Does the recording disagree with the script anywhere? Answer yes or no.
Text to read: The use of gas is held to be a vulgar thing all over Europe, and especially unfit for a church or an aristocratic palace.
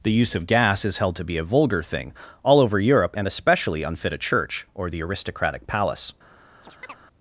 yes